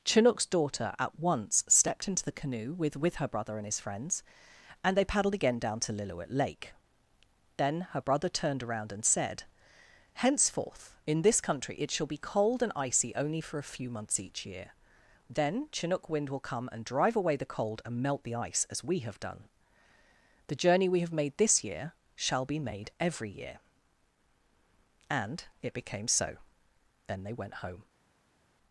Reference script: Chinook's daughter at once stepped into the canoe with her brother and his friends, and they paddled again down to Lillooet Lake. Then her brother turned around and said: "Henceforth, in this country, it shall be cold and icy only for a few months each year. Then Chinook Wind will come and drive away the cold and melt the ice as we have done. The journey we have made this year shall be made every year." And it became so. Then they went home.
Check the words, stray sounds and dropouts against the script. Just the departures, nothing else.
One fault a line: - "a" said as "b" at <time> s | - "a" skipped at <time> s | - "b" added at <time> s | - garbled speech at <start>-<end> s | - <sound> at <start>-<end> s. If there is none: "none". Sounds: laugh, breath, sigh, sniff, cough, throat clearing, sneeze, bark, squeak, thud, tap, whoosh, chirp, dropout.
- "with" added at 3.0 s